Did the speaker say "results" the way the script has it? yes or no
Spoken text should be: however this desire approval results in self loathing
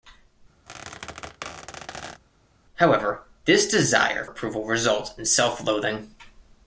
yes